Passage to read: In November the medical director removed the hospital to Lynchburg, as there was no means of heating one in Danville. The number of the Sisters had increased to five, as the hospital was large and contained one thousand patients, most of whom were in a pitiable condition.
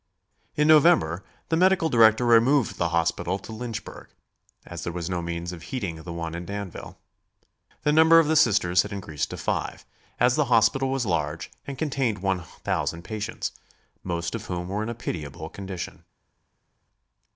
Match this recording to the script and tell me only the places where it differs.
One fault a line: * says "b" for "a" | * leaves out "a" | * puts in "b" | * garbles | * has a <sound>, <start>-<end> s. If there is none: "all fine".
* puts in "the"